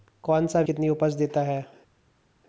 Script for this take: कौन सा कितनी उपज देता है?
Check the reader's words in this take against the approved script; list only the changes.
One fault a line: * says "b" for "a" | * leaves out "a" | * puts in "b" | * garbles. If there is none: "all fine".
all fine